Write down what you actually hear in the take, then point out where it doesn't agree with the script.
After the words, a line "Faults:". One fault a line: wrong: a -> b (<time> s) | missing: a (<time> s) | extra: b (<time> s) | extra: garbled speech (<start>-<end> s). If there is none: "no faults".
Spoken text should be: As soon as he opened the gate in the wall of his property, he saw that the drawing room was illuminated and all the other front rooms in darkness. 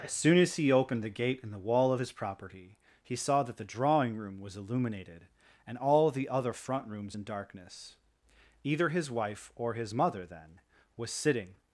As soon as he opened the gate in the wall of his property, he saw that the drawing room was illuminated and all the other front rooms in darkness. Either his wife or his mother, then, was sitting
Faults:
extra: Either his wife or his mother then was sitting (8.6 s)